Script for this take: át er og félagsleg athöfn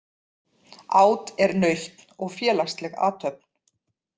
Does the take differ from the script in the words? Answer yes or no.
yes